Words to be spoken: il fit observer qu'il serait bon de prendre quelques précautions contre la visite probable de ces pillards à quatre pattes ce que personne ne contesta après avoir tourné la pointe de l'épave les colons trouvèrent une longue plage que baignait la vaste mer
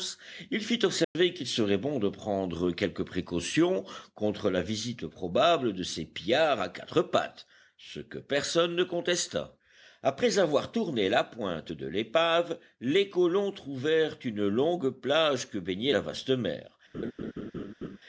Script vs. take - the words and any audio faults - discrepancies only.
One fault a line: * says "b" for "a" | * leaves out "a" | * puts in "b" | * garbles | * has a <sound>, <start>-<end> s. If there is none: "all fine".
* has a dropout, 1.0-1.2 s
* has a laugh, 16.9-18.0 s